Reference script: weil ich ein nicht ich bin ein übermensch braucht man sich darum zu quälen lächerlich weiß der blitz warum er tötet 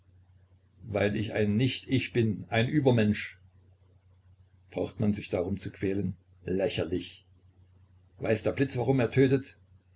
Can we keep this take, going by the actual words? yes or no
yes